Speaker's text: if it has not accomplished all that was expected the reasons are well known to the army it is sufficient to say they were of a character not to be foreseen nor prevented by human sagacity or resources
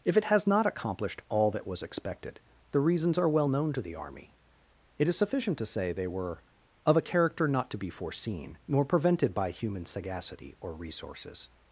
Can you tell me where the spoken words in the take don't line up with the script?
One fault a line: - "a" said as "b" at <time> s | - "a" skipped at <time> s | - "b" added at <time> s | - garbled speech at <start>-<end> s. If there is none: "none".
none